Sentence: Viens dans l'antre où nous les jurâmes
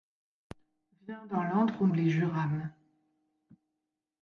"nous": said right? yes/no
no